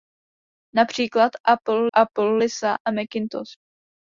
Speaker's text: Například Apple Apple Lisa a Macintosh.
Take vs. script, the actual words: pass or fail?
pass